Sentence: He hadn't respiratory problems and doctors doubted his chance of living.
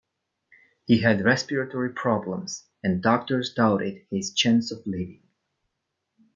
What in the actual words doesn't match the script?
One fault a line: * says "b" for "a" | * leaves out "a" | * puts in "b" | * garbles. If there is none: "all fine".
* says "had" for "hadn't"